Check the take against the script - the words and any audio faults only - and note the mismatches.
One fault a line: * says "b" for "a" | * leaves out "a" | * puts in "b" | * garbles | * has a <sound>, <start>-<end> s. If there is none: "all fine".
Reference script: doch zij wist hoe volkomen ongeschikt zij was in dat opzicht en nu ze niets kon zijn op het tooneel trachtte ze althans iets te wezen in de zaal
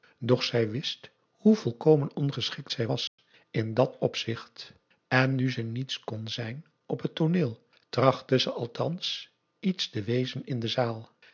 * has a dropout, 3.1-3.2 s